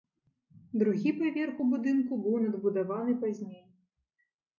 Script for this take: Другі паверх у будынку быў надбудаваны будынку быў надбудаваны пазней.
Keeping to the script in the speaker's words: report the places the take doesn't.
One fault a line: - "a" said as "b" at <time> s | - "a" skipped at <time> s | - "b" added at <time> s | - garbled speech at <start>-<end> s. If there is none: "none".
- "будынку быў надбудаваны" skipped at 3.2 s